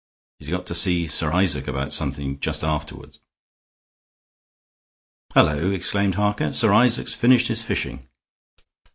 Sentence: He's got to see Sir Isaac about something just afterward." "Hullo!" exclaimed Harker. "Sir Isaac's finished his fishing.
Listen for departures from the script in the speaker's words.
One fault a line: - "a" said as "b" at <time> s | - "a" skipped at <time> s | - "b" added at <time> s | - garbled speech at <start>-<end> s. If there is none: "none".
none